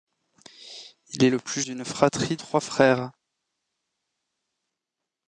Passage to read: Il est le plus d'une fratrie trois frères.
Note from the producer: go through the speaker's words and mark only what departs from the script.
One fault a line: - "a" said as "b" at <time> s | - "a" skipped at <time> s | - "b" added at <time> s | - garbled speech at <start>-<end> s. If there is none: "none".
none